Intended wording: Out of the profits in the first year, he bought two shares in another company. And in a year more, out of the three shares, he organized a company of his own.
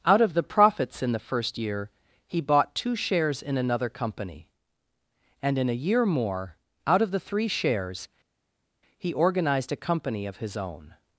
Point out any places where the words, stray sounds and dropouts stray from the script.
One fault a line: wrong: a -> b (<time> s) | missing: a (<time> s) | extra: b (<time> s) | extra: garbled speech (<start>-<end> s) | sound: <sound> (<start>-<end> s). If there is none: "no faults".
no faults